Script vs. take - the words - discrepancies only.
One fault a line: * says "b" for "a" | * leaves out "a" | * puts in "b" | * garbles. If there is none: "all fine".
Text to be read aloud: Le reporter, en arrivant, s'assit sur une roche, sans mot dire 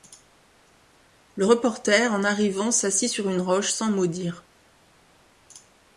all fine